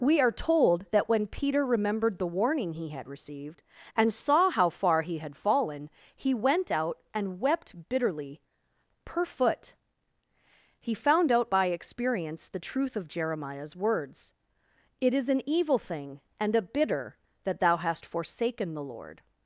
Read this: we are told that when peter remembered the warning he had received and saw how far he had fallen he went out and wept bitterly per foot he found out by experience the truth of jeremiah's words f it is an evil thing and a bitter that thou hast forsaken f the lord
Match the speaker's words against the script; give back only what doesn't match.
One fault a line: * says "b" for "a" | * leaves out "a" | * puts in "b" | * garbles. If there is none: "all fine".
* leaves out "f"
* leaves out "f"